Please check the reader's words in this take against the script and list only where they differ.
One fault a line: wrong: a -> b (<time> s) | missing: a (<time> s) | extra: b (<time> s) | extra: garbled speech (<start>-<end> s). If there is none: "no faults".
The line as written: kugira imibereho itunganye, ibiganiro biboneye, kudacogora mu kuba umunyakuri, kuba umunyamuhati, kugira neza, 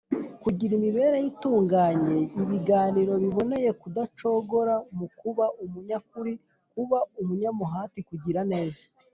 no faults